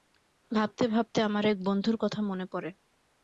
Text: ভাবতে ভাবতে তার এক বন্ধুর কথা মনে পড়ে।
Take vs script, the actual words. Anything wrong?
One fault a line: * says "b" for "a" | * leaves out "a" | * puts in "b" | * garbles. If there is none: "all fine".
* says "আমার" for "তার"